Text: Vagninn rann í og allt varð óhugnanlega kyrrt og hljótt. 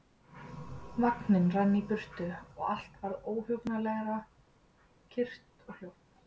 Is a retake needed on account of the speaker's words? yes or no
yes